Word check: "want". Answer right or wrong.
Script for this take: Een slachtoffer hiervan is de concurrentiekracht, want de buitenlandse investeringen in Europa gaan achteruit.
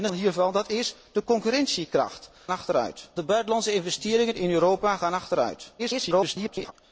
wrong